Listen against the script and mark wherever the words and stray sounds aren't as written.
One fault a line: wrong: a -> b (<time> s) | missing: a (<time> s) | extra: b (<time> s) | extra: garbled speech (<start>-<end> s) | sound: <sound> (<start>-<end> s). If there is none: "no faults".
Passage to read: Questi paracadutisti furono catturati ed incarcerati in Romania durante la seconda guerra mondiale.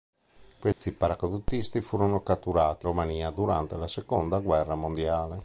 sound: dropout (0.7-0.8 s)
missing: ed incarcerati in (2.9 s)